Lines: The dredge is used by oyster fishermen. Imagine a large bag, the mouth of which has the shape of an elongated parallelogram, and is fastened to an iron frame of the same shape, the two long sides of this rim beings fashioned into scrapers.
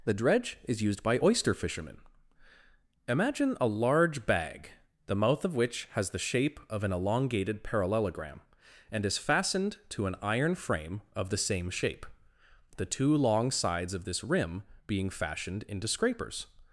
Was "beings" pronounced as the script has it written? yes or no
no